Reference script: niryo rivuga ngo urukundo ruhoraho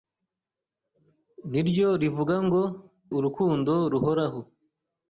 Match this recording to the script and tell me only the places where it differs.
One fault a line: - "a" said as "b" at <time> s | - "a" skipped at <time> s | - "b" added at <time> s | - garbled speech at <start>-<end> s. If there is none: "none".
none